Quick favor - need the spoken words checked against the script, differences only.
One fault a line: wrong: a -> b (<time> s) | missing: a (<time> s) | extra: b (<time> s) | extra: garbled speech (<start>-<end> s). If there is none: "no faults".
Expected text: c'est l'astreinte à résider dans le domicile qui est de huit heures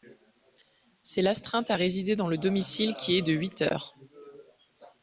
no faults